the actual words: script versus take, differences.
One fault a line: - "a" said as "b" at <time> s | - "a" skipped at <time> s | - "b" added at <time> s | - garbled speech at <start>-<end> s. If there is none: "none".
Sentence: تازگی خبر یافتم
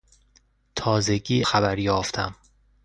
none